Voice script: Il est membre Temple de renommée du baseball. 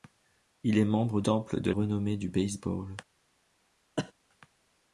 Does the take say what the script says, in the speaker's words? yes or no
yes